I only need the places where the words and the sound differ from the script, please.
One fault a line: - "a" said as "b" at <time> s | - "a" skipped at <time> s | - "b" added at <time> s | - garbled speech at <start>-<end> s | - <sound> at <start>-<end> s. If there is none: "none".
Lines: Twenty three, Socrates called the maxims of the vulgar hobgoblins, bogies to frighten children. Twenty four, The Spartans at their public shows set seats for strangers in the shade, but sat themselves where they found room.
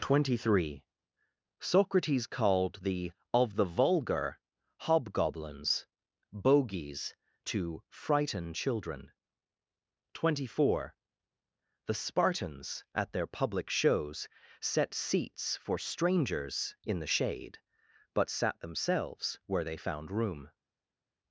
- "maxims" skipped at 3.1 s